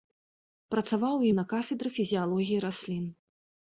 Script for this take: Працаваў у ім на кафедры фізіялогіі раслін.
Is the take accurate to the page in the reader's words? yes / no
yes